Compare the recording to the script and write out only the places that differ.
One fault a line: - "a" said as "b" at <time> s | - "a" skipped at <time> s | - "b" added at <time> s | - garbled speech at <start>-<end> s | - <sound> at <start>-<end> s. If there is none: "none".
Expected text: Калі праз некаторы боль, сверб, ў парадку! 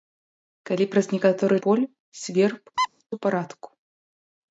- squeak at 2.8-2.9 s